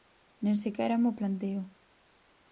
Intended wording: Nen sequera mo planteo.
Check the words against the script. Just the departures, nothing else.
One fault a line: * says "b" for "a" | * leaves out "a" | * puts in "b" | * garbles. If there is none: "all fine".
all fine